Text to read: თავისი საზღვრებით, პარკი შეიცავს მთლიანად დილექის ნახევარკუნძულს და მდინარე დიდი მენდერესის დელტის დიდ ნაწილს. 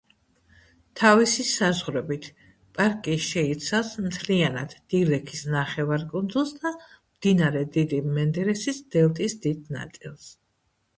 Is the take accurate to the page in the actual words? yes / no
yes